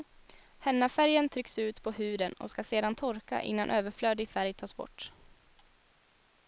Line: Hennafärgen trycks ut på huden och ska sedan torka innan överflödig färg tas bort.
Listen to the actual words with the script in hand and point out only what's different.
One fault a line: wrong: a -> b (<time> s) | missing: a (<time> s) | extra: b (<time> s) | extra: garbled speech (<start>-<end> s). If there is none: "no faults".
no faults